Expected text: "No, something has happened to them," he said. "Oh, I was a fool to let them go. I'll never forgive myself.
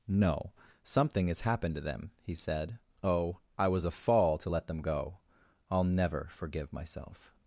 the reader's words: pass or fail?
fail